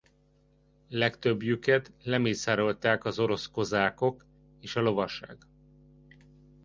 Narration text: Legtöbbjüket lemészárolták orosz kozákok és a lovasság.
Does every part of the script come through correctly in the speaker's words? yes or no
no